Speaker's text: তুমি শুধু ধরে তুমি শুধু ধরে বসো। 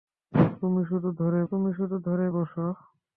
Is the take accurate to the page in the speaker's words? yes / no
yes